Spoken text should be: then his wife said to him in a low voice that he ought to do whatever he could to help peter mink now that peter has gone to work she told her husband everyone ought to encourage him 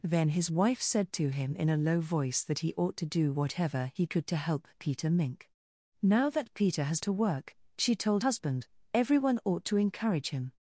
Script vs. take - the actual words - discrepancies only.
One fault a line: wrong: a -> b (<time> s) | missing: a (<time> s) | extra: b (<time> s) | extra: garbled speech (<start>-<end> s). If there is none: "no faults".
missing: gone (7.0 s)
missing: her (8.2 s)